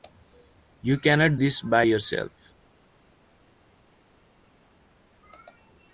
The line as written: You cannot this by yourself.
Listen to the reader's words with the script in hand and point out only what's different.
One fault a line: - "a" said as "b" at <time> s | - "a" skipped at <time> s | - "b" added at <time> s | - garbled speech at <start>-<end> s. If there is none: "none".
none